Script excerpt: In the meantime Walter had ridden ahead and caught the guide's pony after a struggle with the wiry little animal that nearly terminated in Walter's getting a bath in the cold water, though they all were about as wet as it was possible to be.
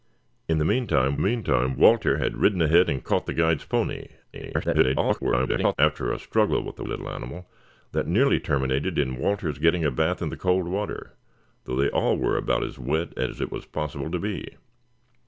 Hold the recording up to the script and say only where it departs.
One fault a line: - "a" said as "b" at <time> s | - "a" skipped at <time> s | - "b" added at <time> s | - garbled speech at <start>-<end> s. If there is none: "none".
- "meantime" added at 1.2 s
- garbled speech at 4.3-5.8 s
- "wiry" skipped at 6.8 s